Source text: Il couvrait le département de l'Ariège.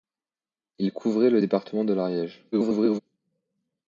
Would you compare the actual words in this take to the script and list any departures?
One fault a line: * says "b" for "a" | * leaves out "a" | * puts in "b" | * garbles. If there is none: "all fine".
* garbles